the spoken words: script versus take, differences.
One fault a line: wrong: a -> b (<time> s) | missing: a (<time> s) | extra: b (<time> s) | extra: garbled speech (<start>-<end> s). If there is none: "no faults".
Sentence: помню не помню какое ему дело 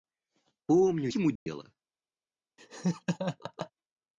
missing: не помню какое (1.1 s)